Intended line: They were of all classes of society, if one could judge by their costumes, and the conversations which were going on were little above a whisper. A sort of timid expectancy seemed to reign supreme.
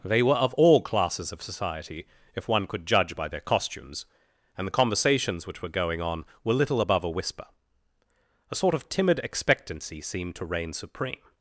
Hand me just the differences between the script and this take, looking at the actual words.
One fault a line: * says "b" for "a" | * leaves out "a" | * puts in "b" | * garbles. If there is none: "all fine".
all fine